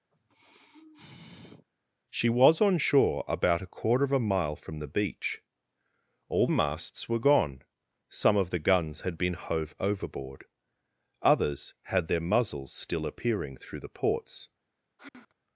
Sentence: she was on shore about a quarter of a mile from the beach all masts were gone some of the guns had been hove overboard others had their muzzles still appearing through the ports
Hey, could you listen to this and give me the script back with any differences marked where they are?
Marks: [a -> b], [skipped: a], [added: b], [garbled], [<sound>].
[sigh] she was on shore about a quarter of a mile from the beach all masts were gone some of the guns had been hove overboard others had their muzzles still appearing through the ports [sigh]